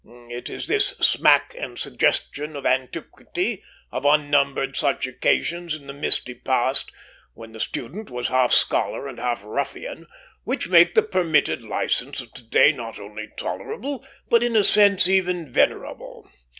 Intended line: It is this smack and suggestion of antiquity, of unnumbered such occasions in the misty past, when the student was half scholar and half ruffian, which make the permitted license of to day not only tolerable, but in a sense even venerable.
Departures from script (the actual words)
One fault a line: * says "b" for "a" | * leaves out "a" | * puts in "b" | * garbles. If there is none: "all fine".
all fine